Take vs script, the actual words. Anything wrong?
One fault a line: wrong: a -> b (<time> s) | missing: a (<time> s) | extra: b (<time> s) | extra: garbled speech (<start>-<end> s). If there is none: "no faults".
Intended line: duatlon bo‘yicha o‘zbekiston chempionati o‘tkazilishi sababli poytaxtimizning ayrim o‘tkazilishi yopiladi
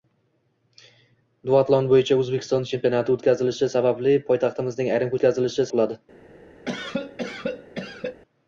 no faults